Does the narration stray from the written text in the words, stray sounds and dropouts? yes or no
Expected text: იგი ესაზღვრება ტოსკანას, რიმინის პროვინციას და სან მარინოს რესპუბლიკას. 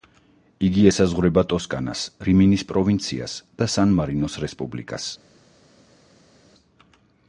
no